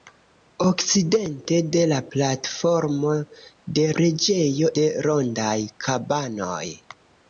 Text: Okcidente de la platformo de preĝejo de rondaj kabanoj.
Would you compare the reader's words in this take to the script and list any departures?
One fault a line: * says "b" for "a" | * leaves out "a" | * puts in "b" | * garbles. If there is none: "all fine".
all fine